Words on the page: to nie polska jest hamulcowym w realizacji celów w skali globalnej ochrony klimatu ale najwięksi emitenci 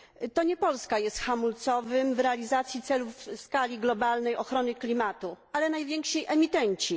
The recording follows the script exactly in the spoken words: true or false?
true